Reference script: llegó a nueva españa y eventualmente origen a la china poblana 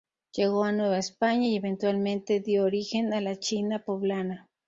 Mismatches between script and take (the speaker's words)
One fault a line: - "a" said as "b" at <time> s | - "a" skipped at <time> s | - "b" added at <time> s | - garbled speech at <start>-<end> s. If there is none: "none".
- "dio" added at 2.4 s